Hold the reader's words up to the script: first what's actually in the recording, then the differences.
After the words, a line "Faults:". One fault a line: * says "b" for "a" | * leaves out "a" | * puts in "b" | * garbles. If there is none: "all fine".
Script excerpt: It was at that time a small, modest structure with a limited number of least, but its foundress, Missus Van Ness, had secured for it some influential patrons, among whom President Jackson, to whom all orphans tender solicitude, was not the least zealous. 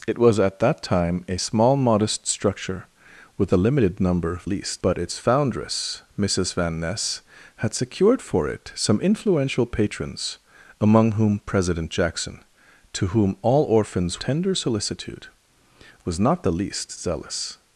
It was at that time a small, modest structure with a limited number of least, but its foundress, Missus Van Ness, had secured for it some influential patrons, among whom President Jackson, to whom all orphans tender solicitude, was not the least zealous.
Faults:
all fine